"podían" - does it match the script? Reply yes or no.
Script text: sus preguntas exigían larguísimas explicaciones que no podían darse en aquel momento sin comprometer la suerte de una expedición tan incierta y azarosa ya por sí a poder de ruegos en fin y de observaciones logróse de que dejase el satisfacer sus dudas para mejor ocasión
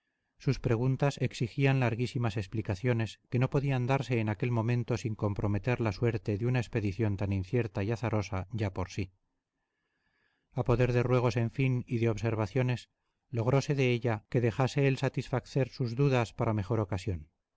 yes